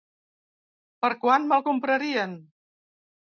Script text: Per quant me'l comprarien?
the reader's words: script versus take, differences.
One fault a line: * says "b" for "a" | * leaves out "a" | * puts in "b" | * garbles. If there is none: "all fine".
all fine